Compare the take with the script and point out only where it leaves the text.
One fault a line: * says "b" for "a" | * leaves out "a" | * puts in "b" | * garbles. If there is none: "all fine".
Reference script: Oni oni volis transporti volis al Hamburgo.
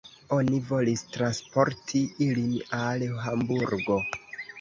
* leaves out "oni"
* says "ilin" for "volis"